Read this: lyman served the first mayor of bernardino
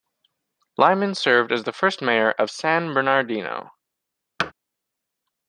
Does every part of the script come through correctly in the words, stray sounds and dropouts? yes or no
no